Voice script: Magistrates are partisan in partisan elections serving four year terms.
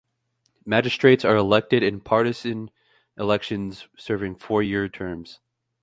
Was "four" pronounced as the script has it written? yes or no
yes